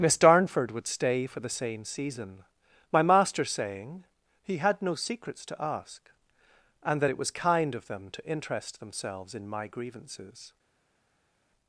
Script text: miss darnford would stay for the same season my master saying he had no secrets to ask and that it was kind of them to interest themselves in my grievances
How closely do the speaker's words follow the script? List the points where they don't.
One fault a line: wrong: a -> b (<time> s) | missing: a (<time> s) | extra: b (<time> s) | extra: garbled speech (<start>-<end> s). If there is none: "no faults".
no faults